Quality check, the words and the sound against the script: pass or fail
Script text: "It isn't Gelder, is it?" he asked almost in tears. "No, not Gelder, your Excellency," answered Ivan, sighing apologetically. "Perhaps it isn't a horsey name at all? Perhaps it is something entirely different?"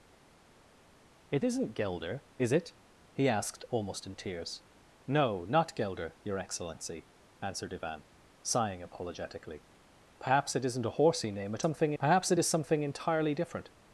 fail